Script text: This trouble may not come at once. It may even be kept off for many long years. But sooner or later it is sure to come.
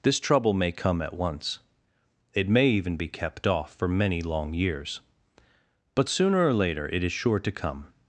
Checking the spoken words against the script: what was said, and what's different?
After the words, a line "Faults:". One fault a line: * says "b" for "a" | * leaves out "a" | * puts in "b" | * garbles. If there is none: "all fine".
This trouble may come at once. It may even be kept off for many long years. But sooner or later it is sure to come.
Faults:
* leaves out "not"